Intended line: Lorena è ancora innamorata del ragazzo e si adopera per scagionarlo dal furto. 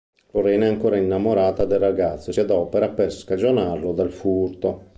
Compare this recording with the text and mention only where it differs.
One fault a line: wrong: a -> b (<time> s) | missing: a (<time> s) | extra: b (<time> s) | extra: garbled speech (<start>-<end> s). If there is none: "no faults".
missing: si (2.3 s)